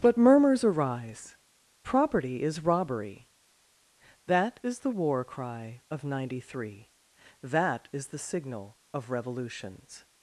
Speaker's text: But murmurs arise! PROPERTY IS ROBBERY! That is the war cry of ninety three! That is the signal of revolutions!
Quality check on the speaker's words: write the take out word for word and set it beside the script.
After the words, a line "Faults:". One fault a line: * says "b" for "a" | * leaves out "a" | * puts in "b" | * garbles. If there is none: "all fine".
But murmurs arise! PROPERTY IS ROBBERY! That is the war cry of ninety three! That is the signal of revolutions!
Faults:
all fine